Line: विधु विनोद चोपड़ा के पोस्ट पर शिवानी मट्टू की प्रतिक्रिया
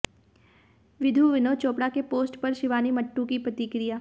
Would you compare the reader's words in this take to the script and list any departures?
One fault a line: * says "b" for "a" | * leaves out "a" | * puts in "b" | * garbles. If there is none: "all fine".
all fine